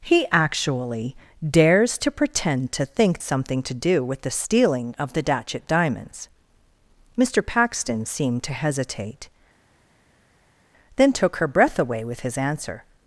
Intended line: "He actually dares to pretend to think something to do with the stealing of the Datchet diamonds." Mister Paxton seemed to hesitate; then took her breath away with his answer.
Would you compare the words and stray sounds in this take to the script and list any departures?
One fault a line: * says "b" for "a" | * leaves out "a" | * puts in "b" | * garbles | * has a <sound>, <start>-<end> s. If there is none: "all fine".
all fine